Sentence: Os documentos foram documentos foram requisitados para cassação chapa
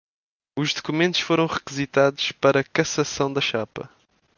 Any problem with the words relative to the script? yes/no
yes